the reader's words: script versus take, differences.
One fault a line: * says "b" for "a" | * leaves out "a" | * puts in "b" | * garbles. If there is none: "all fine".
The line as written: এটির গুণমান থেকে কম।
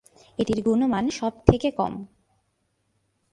* puts in "সব"